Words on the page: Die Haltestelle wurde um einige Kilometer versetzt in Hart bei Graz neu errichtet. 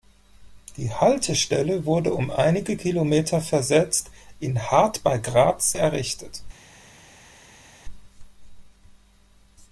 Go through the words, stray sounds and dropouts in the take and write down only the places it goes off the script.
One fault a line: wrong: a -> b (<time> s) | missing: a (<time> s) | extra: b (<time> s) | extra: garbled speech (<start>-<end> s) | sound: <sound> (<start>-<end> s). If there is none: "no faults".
missing: neu (5.8 s)